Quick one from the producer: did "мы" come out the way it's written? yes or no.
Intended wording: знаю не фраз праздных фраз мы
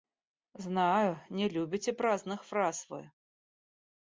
no